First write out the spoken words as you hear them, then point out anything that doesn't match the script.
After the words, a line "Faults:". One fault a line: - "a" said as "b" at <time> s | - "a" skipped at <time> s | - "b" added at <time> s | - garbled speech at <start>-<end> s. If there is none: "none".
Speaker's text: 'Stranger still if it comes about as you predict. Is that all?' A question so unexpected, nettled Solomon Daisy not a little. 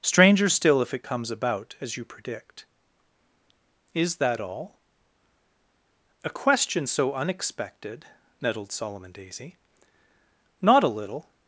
'Stranger still if it comes about as you predict. Is that all?' A question so unexpected, nettled Solomon Daisy not a little.
Faults:
none